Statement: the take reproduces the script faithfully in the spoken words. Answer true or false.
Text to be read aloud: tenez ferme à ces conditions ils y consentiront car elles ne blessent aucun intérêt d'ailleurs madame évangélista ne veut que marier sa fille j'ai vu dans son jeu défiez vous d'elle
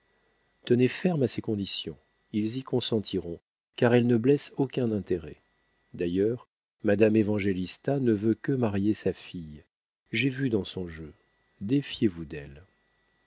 true